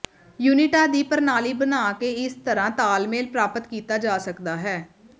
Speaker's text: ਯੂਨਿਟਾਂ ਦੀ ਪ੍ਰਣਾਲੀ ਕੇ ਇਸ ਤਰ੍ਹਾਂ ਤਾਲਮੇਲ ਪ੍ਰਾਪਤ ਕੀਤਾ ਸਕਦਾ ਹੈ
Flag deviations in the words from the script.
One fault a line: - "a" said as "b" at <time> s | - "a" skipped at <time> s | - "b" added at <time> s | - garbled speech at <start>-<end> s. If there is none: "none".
- "ਬਣਾ" added at 1.5 s
- "ਜਾ" added at 4.0 s